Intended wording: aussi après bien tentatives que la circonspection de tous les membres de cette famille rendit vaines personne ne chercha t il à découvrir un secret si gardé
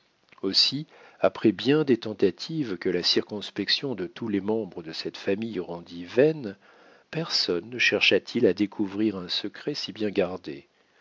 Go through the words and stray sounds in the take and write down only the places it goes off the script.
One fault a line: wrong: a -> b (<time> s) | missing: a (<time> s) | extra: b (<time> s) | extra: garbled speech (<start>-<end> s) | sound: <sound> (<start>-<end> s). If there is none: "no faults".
extra: des (1.8 s)
extra: bien (9.9 s)